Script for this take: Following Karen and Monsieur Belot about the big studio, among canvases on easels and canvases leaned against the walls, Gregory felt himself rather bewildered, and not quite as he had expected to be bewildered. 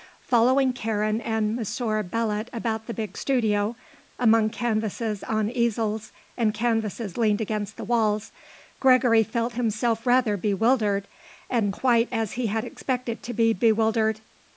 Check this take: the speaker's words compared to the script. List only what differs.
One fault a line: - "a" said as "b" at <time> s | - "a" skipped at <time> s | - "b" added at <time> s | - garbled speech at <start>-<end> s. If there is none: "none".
- "not" skipped at 11.7 s